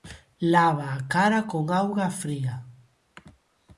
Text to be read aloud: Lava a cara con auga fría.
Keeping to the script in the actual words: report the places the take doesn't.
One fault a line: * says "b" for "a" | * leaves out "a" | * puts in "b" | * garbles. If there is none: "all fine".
all fine